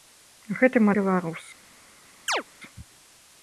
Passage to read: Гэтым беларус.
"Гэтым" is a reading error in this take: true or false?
false